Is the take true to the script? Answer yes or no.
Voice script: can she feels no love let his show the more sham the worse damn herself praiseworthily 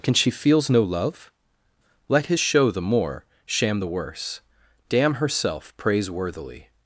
yes